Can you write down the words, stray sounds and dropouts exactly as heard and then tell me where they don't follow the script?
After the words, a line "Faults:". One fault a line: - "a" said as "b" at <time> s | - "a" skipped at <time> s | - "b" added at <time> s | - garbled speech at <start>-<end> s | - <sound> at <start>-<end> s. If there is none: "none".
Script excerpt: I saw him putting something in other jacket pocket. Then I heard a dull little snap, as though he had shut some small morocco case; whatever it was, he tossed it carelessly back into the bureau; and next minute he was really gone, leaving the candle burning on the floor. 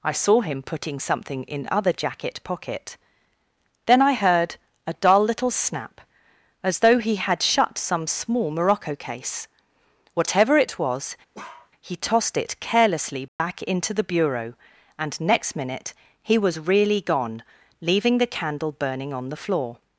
I saw him putting something in other jacket pocket. Then I heard a dull little snap, as though he had shut some small morocco case; whatever it was, he tossed it carelessly back into the bureau; and next minute he was really gone, leaving the candle burning on the floor.
Faults:
- bark at 11.3-11.7 s
- dropout at 13.3-13.4 s